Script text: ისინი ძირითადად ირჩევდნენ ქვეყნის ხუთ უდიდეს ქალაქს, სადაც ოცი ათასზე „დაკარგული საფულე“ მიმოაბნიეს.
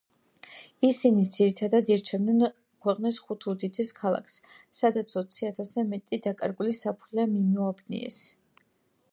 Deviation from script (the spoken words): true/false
true